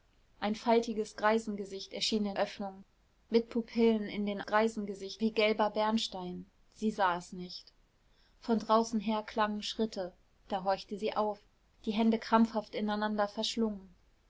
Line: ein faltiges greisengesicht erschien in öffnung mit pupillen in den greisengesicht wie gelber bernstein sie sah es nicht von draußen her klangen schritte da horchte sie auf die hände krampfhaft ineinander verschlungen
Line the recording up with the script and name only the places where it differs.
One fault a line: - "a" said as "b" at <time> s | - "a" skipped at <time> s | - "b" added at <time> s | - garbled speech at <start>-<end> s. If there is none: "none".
none